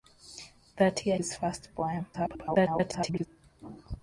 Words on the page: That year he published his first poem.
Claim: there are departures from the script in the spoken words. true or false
true